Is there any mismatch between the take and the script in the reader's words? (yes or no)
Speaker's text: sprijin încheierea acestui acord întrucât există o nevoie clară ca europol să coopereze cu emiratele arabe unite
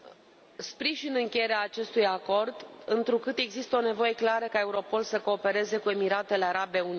no